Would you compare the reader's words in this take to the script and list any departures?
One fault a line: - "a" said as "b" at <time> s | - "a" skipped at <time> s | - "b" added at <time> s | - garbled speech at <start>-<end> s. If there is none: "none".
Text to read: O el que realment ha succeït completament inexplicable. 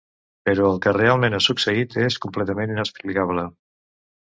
- "O" said as "Però" at 0.5 s
- "és" added at 2.0 s